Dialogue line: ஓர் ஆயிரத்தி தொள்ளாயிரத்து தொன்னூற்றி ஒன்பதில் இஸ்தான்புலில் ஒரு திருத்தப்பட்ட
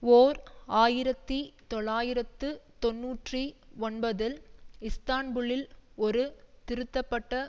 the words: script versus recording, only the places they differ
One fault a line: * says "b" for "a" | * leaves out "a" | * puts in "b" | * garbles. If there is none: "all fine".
all fine